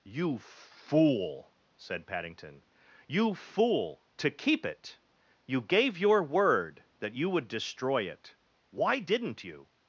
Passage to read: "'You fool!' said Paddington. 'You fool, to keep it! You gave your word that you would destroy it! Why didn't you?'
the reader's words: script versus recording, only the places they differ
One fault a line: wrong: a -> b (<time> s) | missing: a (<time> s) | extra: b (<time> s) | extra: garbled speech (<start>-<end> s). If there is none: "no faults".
no faults